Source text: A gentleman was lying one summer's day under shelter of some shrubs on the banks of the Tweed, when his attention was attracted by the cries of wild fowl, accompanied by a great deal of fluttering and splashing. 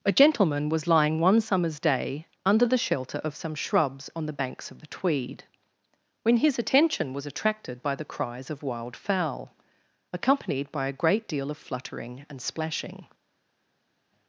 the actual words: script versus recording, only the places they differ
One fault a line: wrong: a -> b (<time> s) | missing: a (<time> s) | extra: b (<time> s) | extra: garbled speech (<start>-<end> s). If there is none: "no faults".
extra: the (2.6 s)